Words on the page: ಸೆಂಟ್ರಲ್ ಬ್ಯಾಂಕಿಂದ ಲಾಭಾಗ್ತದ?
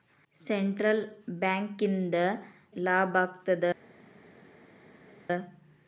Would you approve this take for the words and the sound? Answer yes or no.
yes